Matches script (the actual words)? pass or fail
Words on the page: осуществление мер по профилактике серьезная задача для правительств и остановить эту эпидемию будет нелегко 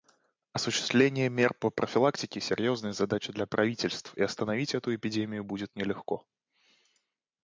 pass